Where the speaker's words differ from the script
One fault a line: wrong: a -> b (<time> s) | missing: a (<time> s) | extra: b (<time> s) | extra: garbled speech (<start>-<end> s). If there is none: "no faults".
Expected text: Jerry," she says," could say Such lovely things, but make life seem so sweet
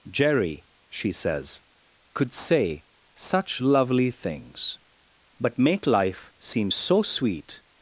no faults